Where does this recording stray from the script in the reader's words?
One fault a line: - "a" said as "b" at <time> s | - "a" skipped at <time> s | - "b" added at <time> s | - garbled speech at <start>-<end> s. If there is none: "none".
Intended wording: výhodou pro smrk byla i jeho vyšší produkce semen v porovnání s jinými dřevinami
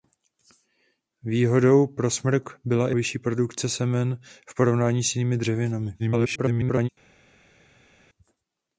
- "jeho" skipped at 3.0 s
- garbled speech at 6.0-6.9 s